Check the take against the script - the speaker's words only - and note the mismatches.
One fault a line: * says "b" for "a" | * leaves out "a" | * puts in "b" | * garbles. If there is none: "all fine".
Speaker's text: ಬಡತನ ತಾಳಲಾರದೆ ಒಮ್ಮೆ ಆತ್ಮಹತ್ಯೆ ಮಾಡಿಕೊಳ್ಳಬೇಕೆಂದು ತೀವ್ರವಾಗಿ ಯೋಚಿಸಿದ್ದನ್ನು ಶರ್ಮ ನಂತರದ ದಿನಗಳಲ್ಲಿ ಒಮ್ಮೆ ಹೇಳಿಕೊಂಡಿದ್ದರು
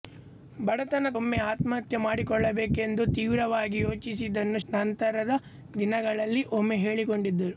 * leaves out "ತಾಳಲಾರದೆ"
* leaves out "ಶರ್ಮ"